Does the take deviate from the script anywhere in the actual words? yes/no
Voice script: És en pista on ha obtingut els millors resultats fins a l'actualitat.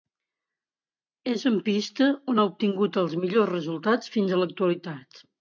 no